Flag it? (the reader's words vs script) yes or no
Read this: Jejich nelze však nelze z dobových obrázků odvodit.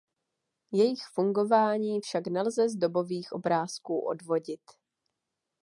yes